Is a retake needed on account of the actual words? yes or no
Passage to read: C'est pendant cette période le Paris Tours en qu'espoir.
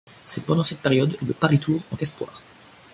no